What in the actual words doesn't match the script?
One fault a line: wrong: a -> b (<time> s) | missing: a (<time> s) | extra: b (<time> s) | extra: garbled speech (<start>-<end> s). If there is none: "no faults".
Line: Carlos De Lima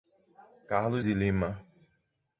no faults